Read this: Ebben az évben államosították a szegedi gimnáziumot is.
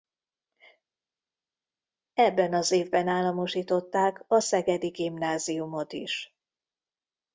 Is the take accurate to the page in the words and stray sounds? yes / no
yes